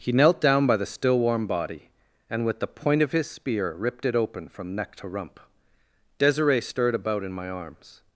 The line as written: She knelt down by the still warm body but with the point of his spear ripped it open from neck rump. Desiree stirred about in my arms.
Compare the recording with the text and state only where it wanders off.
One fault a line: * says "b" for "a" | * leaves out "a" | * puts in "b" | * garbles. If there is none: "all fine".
* says "He" for "She"
* says "and" for "but"
* puts in "to"